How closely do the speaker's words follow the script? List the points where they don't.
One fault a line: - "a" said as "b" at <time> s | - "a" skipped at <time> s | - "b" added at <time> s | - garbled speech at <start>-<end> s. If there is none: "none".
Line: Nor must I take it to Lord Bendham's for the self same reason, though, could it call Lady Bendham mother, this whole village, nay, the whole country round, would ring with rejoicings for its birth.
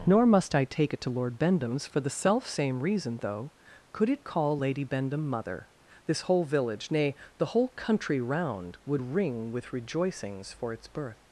none